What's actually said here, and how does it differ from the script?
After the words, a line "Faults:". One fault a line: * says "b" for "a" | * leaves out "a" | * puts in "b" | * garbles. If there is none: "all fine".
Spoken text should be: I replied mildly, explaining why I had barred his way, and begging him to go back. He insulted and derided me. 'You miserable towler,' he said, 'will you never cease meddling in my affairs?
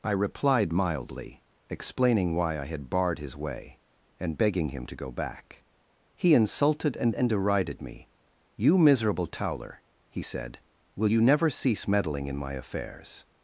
I replied mildly, explaining why I had barred his way, and begging him to go back. He insulted and and derided me. 'You miserable towler,' he said, 'will you never cease meddling in my affairs?
Faults:
* puts in "and"